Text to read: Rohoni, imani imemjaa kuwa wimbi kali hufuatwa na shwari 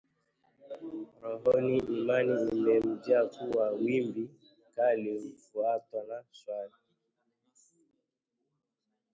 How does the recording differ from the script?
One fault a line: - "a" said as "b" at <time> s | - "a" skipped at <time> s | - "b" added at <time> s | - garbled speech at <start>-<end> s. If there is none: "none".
none